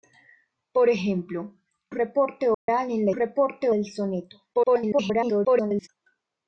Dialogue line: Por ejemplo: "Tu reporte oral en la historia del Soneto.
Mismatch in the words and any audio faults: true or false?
true